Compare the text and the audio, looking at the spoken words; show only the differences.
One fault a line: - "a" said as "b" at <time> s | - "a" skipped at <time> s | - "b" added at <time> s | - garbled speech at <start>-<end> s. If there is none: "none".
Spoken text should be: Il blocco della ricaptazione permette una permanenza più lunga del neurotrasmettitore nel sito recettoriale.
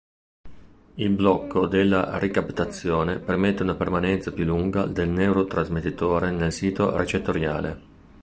none